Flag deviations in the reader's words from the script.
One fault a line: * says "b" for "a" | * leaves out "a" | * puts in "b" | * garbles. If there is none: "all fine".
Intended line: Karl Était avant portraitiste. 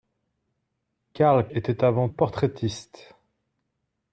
all fine